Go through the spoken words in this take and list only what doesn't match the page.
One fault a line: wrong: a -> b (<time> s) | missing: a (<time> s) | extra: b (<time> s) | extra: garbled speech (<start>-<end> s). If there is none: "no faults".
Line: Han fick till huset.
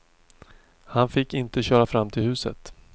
extra: inte köra fram (1.3 s)